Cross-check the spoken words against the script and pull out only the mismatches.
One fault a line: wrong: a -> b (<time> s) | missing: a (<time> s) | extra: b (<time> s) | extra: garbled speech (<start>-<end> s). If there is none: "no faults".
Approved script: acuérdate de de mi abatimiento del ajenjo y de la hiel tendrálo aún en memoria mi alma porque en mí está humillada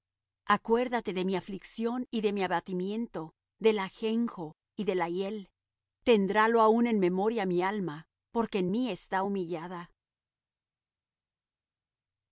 extra: mi aflicción y (1.2 s)